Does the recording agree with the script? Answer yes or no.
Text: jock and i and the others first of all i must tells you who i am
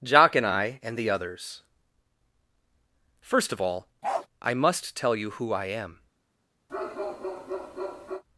no